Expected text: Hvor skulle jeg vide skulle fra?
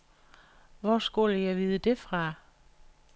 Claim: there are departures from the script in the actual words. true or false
true